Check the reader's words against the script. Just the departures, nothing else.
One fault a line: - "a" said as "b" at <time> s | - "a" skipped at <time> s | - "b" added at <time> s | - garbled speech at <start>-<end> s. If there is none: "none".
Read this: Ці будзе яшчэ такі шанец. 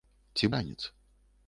- "будзе яшчэ такі" skipped at 0.5 s